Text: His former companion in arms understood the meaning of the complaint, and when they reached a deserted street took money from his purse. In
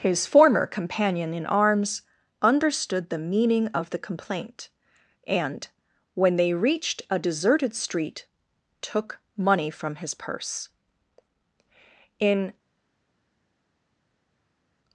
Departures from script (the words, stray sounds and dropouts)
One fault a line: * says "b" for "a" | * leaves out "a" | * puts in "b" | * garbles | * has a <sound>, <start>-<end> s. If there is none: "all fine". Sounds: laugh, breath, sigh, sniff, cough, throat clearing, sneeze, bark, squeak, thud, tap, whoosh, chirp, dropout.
all fine